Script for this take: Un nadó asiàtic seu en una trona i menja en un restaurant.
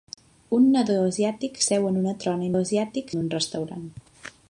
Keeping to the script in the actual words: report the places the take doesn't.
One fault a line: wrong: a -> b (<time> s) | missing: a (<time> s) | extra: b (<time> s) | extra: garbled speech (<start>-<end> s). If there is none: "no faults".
wrong: menja -> asiàtic (2.6 s)